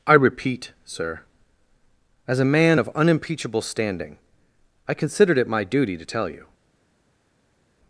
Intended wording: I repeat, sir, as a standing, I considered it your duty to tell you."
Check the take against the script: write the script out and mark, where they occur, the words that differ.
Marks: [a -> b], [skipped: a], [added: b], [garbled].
I repeat, sir, as a [added: man of unimpeachable] standing, I considered it [your -> my] duty to tell you."